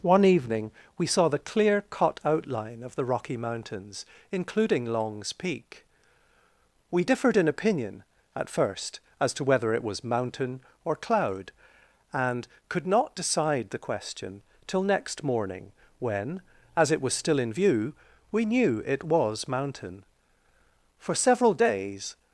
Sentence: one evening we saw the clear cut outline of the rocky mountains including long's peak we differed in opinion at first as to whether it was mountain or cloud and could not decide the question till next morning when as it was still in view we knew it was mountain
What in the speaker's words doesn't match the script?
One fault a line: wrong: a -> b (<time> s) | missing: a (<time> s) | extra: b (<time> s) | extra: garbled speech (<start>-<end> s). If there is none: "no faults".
extra: for several days (21.0 s)